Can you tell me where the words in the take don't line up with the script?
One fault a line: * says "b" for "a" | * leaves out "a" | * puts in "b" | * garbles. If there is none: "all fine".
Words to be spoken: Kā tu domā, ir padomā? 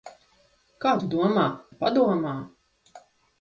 all fine